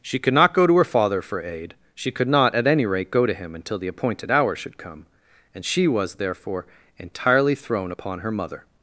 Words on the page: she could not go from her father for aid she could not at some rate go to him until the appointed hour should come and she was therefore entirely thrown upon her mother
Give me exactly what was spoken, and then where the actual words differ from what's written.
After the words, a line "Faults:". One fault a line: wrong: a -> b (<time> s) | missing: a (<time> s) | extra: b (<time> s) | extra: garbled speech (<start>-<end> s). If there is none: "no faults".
she could not go to her father for aid she could not at any rate go to him until the appointed hour should come and she was therefore entirely thrown upon her mother
Faults:
wrong: from -> to (0.7 s)
wrong: some -> any (2.7 s)